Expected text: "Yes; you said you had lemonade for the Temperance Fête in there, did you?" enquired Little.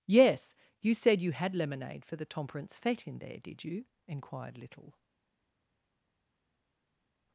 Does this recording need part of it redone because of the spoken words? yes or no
no